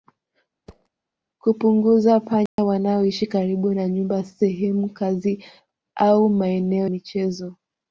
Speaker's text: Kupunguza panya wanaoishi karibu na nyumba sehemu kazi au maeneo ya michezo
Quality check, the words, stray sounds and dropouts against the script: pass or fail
fail